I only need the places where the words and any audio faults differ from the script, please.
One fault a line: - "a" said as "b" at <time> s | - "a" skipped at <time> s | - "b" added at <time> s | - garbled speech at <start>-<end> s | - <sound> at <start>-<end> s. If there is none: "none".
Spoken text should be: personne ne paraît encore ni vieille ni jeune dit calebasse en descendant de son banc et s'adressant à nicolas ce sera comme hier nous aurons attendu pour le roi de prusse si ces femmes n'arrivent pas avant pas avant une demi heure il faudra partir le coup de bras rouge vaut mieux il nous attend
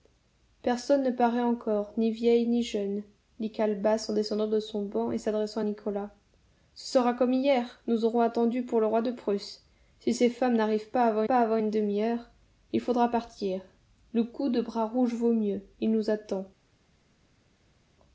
none